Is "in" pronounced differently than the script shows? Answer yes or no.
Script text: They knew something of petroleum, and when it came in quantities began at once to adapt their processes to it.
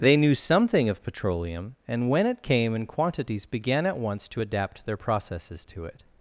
no